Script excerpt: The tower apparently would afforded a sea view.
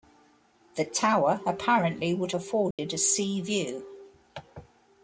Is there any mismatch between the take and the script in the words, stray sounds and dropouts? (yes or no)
yes